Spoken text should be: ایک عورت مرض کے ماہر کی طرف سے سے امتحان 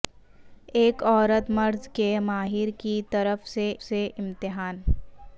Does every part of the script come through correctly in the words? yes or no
yes